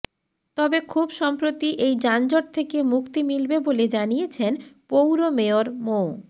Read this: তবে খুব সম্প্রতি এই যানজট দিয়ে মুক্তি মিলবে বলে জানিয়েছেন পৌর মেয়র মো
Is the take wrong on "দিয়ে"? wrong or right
wrong